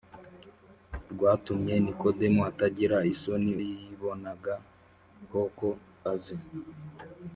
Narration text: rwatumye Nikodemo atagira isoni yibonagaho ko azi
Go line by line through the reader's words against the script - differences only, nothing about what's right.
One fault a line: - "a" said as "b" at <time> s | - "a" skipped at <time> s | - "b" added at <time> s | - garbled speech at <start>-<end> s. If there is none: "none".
none